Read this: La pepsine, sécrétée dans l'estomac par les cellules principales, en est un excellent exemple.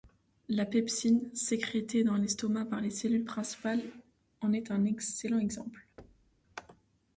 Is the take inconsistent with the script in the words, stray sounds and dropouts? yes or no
yes